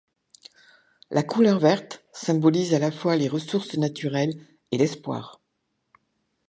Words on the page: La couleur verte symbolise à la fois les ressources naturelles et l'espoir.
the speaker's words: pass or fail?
pass